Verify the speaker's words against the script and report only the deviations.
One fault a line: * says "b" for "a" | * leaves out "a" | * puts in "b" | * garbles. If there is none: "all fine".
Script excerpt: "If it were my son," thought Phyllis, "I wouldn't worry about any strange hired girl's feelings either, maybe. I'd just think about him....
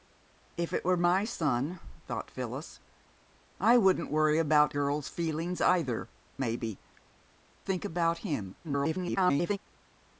* leaves out "any strange hired"
* leaves out "I'd just"
* garbles